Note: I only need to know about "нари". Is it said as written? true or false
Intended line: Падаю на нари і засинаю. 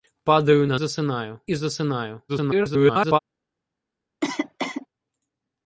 false